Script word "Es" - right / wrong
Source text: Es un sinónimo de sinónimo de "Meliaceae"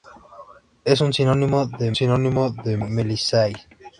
right